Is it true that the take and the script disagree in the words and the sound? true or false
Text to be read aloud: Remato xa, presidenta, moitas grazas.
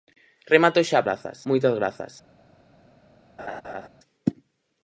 true